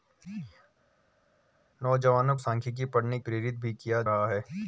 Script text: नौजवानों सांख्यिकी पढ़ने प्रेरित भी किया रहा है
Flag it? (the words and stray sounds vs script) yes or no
no